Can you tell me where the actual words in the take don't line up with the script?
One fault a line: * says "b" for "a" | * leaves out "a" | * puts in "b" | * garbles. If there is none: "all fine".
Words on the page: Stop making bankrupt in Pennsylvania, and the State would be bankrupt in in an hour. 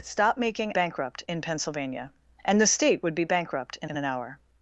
all fine